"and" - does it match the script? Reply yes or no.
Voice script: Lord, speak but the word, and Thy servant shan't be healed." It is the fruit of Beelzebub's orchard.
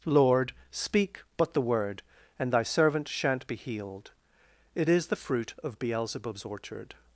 yes